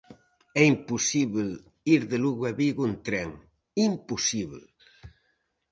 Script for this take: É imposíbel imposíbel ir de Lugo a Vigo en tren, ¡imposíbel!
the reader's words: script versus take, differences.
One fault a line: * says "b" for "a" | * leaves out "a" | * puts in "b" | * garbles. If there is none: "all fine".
* leaves out "imposíbel"